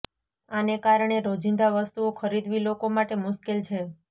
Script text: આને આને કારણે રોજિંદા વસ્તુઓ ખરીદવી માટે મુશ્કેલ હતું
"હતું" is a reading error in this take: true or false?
true